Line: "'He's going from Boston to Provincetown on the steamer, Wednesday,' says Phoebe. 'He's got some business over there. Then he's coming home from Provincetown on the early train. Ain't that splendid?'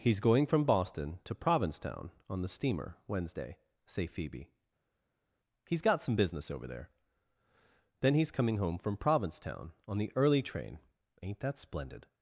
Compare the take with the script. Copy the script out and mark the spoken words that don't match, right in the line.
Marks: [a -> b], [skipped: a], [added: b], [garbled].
"'He's going from Boston to Provincetown on the steamer, Wednesday,' [says -> say] Phoebe. 'He's got some business over there. Then he's coming home from Provincetown on the early train. Ain't that splendid?'